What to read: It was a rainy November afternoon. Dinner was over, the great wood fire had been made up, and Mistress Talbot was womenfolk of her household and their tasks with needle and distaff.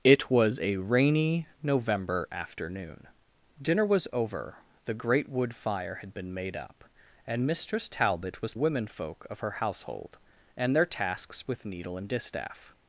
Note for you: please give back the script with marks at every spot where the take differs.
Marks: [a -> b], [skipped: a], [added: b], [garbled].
It was a rainy November afternoon. Dinner was over, the great wood fire had been made up, and Mistress Talbot was womenfolk of her household and their tasks with needle and distaff.